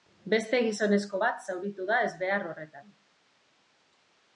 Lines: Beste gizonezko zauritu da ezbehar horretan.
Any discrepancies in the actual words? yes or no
yes